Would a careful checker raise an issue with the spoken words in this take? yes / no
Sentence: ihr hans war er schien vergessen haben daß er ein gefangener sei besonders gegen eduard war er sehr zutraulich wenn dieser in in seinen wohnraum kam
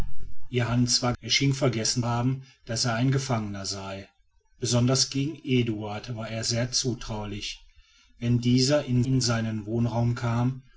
no